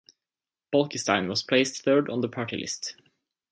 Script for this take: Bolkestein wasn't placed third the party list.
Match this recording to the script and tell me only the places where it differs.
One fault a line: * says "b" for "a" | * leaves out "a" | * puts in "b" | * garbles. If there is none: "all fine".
* says "was" for "wasn't"
* puts in "on"